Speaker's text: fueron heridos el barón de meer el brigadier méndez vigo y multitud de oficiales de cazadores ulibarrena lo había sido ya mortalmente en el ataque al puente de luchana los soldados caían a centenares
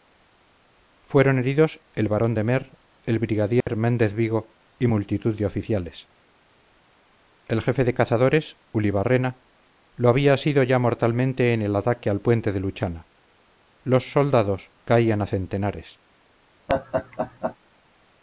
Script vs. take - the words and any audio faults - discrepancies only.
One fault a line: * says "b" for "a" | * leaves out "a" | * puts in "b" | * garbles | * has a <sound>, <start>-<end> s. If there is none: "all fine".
* has a dropout, 3.6-3.7 s
* puts in "el jefe"
* has a laugh, 16.7-17.6 s